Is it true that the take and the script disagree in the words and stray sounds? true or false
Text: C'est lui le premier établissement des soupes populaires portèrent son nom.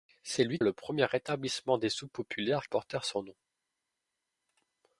false